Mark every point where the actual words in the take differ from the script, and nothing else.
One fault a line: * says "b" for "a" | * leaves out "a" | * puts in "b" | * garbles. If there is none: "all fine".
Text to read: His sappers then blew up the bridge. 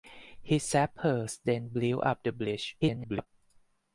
* garbles